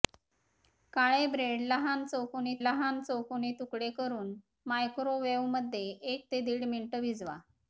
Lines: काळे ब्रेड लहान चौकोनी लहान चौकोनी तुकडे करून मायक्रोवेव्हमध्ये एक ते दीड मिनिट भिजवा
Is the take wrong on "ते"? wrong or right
right